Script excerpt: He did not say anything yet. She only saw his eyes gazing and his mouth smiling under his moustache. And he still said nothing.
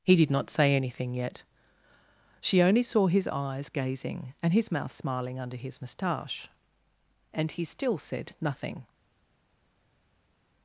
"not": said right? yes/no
yes